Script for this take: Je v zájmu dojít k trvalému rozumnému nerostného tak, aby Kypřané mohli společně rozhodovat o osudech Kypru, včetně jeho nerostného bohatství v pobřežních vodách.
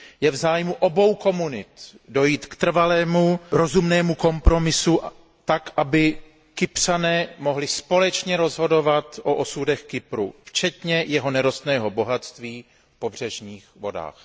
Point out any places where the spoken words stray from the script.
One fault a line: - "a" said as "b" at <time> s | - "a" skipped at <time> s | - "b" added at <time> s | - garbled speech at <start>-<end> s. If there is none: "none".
- "obou komunit" added at 0.7 s
- "nerostného" said as "kompromisu" at 4.2 s